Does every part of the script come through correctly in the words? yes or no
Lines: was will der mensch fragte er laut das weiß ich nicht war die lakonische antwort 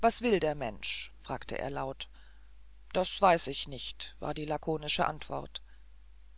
yes